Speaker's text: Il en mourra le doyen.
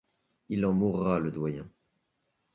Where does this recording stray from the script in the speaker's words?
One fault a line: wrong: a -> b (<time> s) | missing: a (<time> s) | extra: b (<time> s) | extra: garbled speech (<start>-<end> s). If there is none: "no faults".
no faults